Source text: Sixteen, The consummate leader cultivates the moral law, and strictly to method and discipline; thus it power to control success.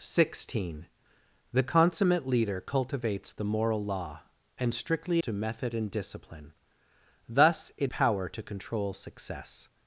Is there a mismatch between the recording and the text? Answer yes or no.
no